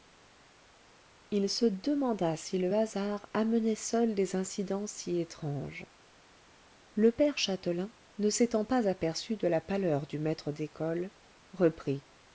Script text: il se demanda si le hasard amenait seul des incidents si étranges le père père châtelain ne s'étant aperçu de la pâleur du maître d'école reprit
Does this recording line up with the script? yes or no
no